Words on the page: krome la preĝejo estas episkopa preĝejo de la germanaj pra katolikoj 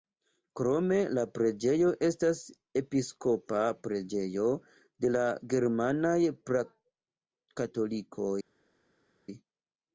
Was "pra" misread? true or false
false